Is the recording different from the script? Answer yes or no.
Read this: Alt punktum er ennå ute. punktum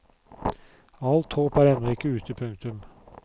yes